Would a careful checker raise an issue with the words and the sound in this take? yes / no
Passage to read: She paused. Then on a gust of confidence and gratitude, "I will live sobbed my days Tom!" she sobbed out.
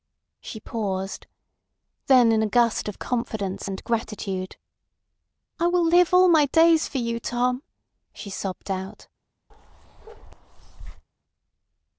yes